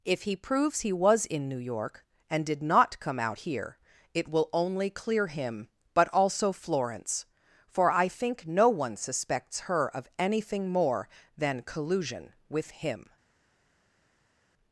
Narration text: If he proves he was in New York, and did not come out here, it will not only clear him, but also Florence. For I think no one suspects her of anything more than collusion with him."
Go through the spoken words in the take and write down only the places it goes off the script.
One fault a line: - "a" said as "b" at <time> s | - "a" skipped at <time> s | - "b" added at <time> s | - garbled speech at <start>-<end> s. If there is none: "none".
- "not" skipped at 4.5 s